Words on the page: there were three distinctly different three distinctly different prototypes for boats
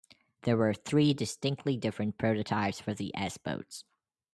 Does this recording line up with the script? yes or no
no